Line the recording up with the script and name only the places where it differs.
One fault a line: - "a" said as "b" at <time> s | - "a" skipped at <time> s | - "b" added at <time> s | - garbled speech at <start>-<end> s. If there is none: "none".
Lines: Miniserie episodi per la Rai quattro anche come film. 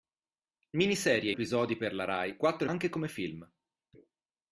none